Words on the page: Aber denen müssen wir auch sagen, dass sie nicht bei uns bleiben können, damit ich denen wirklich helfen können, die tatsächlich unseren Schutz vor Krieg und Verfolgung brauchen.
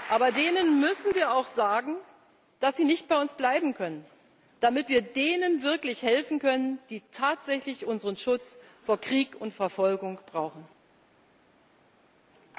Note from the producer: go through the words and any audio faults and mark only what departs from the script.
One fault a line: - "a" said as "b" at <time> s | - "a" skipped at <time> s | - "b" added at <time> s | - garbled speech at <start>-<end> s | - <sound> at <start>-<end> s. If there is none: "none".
- "ich" said as "wir" at 4.9 s